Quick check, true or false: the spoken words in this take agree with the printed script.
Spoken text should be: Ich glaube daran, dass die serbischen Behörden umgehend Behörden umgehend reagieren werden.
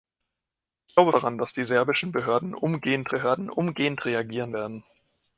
true